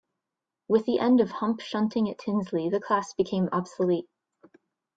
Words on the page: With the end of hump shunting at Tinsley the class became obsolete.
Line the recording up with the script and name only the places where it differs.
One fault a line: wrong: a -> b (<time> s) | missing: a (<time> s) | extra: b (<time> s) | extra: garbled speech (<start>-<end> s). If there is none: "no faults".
no faults